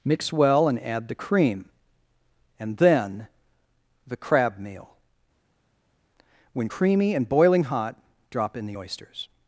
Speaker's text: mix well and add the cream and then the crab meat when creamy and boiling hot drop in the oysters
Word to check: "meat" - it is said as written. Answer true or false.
false